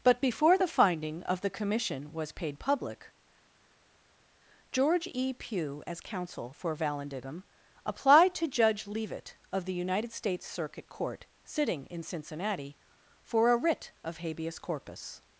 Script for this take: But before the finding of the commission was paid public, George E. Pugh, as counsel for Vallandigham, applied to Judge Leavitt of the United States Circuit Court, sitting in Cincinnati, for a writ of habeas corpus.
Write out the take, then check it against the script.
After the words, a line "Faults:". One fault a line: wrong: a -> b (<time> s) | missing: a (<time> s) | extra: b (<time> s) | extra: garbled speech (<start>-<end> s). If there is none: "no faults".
But before the finding of the commission was paid public, George E. Pugh, as counsel for Vallandigham, applied to Judge Leavitt of the United States Circuit Court, sitting in Cincinnati, for a writ of habeas corpus.
Faults:
no faults